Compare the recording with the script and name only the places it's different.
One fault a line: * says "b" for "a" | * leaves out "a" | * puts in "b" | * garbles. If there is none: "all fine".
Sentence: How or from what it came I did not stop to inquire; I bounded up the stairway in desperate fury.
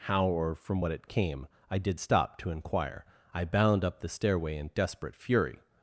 * leaves out "not"
* says "bound" for "bounded"